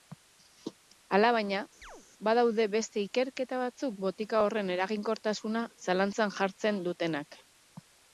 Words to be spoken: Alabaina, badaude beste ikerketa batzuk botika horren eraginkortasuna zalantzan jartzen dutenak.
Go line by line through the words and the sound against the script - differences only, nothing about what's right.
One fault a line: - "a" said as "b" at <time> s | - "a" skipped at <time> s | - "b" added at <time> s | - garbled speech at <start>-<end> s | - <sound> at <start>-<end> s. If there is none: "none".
- chirp at 1.8-2.1 s